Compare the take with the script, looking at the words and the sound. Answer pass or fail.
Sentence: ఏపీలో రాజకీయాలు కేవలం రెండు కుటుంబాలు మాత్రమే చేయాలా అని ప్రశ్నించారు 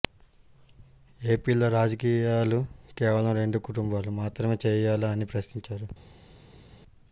pass